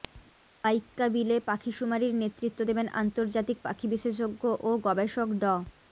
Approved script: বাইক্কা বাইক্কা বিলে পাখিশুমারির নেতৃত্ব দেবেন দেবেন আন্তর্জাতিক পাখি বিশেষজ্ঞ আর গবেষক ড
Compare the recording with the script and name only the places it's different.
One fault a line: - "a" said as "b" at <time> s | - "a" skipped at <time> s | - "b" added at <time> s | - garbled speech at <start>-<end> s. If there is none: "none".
- "বাইক্কা" skipped at 1.1 s
- "দেবেন" skipped at 2.9 s
- "আর" said as "ও" at 4.6 s